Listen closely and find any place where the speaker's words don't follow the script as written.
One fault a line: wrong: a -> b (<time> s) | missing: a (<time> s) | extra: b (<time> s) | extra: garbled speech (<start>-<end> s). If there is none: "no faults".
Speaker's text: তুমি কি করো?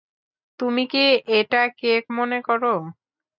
extra: এটা কেক মনে (1.4 s)